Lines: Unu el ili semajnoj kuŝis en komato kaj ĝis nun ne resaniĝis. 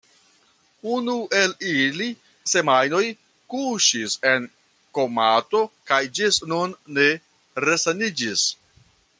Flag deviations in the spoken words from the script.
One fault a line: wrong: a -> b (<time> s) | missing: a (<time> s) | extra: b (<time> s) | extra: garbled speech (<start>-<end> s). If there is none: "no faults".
no faults